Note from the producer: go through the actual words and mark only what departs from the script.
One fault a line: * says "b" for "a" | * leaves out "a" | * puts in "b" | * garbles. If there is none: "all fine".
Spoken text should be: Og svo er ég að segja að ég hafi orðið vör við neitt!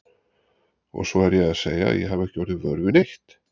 * puts in "ekki"